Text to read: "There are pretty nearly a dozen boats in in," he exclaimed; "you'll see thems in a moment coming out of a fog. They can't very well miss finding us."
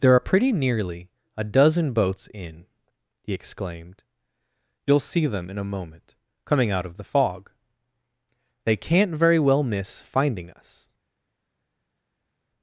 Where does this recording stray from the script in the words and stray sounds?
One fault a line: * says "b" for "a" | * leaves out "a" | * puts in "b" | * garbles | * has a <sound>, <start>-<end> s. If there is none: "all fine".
* leaves out "in"
* says "them" for "thems"
* says "the" for "a"